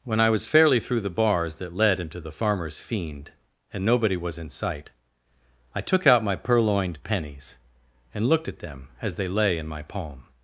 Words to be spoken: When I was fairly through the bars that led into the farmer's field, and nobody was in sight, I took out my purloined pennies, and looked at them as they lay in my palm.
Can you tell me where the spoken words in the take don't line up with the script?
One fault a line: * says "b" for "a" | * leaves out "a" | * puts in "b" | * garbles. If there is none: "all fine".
* says "fiend" for "field"